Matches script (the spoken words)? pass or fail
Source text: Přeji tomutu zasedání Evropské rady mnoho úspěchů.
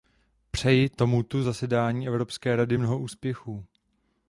pass